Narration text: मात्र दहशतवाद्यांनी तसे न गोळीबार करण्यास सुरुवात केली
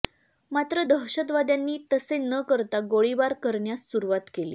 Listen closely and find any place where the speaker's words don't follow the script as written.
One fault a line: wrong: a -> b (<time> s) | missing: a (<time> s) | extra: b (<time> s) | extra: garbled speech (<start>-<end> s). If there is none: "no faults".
extra: करता (2.5 s)